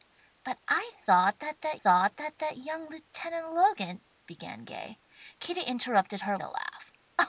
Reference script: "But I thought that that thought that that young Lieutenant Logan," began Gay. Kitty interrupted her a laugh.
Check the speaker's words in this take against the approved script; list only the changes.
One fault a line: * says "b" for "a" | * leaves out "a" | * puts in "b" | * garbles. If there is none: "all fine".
all fine